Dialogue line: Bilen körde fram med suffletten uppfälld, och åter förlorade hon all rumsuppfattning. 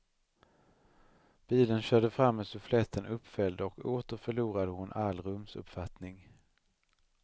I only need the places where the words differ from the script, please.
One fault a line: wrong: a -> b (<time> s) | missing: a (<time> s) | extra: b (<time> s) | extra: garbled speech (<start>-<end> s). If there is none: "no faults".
no faults